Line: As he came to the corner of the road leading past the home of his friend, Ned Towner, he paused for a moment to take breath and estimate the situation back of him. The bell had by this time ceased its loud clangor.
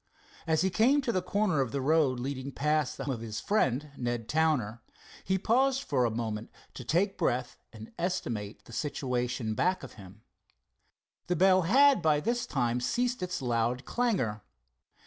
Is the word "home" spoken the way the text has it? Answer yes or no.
no